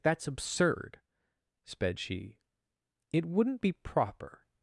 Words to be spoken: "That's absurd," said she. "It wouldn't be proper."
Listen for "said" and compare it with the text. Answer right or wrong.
wrong